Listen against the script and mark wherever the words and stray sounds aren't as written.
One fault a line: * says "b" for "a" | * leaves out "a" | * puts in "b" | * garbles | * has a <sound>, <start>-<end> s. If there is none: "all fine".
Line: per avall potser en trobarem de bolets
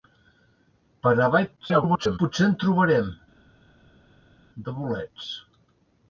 * garbles